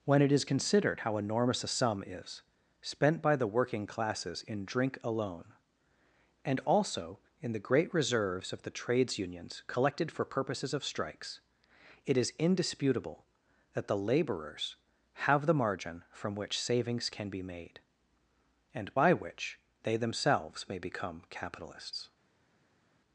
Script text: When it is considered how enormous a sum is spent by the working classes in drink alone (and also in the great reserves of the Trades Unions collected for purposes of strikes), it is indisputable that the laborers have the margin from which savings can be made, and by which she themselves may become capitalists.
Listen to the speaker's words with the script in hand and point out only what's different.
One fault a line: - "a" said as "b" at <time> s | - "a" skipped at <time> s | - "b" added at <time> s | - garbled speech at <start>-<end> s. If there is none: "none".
- "she" said as "they" at 19.8 s